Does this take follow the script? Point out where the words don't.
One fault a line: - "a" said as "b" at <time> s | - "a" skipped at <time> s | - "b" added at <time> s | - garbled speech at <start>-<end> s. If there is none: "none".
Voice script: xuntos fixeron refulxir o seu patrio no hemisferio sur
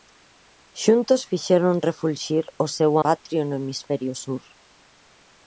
none